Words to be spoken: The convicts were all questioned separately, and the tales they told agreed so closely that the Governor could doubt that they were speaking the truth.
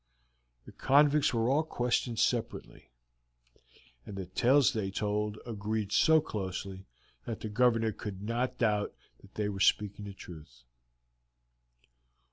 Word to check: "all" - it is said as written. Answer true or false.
true